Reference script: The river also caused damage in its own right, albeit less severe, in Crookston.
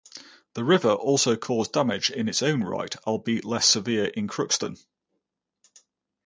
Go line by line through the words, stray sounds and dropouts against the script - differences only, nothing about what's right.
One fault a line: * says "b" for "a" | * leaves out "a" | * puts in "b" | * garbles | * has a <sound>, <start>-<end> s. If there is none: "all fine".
all fine